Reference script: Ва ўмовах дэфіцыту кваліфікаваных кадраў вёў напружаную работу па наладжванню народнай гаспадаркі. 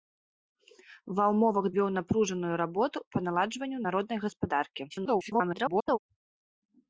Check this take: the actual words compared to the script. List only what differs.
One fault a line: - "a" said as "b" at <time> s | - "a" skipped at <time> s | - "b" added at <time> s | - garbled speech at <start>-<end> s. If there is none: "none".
- "дэфіцыту кваліфікаваных кадраў" skipped at 1.6 s
- garbled speech at 4.9-6.0 s